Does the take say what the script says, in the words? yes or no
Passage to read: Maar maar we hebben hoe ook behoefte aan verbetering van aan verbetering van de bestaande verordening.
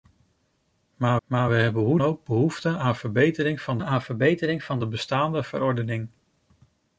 yes